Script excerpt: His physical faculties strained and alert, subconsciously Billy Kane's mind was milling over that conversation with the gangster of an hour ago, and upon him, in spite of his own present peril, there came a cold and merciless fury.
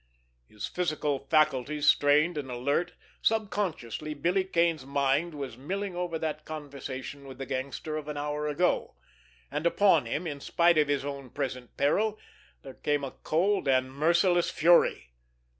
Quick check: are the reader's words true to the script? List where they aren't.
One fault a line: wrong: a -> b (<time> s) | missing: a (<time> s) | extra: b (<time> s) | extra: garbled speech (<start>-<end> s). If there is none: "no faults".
no faults